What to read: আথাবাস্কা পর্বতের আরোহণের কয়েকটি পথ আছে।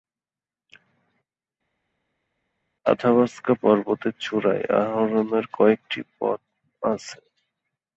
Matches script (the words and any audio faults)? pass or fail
fail